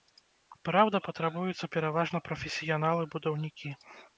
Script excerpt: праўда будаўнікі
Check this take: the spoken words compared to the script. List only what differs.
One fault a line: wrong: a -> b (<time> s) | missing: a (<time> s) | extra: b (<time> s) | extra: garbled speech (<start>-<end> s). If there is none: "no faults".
extra: патрабуюцца пераважна прафесіяналы (1.1 s)